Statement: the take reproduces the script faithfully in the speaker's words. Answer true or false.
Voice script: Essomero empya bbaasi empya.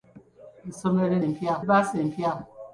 true